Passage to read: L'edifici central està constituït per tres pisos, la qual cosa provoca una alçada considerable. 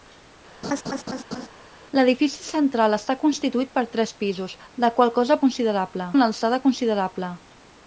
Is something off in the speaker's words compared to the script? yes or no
yes